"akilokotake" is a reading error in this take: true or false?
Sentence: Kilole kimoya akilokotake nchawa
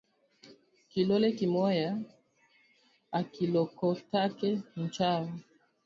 false